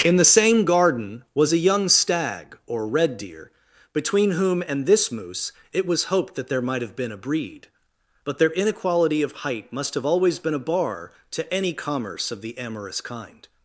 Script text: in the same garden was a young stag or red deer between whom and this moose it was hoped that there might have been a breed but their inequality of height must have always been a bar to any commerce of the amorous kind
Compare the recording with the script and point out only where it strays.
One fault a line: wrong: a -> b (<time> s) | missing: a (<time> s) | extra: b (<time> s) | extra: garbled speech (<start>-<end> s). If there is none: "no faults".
no faults